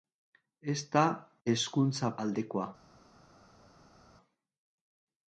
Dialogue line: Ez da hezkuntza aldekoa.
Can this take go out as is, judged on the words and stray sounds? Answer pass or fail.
pass